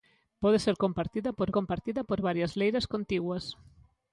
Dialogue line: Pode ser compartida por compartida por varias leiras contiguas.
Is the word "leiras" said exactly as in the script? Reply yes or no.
yes